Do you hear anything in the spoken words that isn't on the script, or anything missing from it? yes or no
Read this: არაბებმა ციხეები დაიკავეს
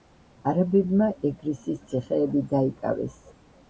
yes